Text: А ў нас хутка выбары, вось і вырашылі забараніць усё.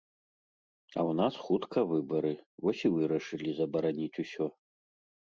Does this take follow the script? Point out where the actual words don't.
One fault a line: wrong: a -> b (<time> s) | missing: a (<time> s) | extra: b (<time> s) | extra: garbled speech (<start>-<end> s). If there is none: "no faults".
no faults